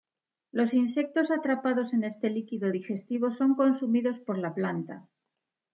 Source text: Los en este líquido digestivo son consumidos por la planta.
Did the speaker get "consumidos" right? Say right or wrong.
right